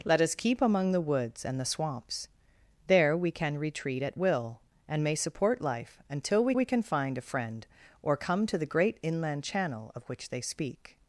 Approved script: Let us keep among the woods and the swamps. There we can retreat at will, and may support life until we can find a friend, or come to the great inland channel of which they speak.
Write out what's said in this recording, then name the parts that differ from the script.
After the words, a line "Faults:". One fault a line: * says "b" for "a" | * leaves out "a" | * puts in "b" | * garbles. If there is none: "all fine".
Let us keep among the woods and the swamps. There we can retreat at will, and may support life until we we can find a friend, or come to the great inland channel of which they speak.
Faults:
* puts in "we"